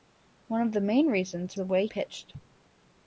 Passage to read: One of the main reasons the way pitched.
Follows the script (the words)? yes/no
yes